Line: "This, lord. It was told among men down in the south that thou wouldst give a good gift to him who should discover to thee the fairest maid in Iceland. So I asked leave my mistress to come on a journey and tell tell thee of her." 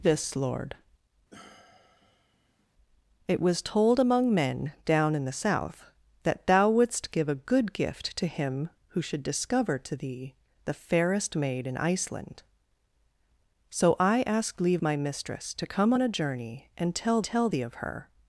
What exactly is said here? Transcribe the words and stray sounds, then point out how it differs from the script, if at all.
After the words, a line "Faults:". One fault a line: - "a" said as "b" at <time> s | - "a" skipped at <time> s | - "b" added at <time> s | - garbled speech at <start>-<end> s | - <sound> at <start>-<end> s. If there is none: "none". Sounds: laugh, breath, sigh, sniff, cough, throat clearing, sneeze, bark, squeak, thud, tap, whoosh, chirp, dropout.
"This, lord. It was told among men down in the south that thou wouldst give a good gift to him who should discover to thee the fairest maid in Iceland. So I asked leave my mistress to come on a journey and tell tell thee of her."
Faults:
- sigh at 1.3-2.7 s